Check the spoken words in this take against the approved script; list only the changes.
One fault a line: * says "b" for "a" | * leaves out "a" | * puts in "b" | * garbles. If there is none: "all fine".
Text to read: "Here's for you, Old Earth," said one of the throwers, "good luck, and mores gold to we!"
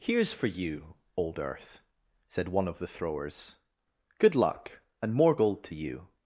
* says "more" for "mores"
* says "you" for "we"